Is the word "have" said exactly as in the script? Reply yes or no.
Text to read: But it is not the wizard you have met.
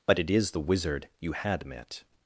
no